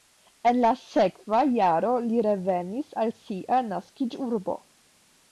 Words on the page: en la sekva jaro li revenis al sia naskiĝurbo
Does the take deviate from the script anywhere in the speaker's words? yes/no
no